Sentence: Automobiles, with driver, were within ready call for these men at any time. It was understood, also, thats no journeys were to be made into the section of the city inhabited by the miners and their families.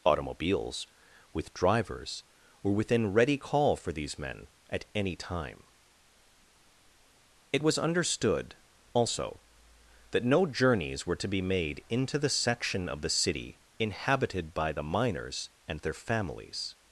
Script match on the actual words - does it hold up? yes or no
no